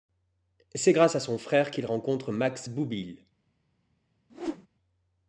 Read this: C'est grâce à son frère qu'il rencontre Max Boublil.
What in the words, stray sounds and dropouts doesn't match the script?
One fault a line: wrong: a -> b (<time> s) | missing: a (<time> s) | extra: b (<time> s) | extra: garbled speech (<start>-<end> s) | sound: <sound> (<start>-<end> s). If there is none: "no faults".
sound: whoosh (4.3-4.7 s)